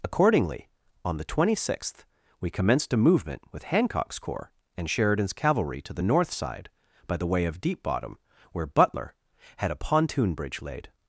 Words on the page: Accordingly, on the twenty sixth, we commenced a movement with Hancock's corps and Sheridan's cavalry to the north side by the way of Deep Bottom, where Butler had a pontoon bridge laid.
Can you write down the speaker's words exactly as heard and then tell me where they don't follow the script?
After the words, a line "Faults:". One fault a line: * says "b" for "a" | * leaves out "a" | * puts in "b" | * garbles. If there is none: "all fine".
Accordingly, on the twenty sixth, we commenced a movement with Hancock's corps and Sheridan's cavalry to the north side by the way of Deep Bottom, where Butler had a pontoon bridge laid.
Faults:
all fine